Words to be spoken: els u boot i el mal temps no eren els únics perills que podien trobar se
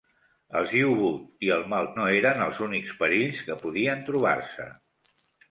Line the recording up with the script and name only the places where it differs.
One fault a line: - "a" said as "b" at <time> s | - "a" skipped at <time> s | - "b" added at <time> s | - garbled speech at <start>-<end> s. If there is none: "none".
- "temps" skipped at 1.9 s